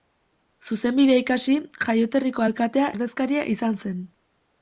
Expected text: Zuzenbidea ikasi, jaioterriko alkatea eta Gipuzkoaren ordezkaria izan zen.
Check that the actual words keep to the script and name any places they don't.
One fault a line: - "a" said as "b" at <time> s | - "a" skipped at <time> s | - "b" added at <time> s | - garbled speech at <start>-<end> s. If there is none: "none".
- "eta Gipuzkoaren" skipped at 2.9 s